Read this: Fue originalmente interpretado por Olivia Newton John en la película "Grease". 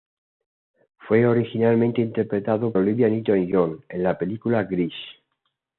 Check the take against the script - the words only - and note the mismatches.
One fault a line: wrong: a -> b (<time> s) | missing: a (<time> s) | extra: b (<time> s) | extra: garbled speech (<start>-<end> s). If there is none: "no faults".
missing: por (2.7 s)